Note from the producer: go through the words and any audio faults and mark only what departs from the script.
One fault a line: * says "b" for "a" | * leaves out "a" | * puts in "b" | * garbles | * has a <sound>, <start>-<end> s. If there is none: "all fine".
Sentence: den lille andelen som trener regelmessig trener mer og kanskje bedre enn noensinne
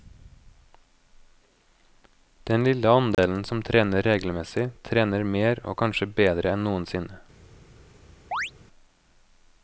* has a dropout, 3.1-3.2 s
* has a chirp, 8.3-8.5 s